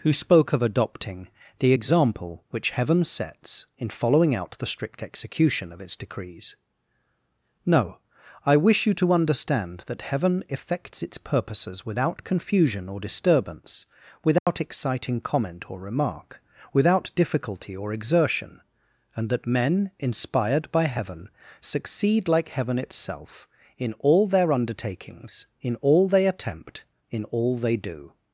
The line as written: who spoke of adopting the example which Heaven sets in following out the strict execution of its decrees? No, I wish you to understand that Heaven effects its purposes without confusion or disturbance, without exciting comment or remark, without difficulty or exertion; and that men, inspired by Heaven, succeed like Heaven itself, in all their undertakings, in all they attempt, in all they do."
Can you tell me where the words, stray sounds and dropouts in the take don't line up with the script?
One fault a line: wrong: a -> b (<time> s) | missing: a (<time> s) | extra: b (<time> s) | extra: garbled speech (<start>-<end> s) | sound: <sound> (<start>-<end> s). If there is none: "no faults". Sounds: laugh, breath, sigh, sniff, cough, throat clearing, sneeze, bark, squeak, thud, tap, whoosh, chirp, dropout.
sound: dropout (14.4-14.5 s)